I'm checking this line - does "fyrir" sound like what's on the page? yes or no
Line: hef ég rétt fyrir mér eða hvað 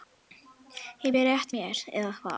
no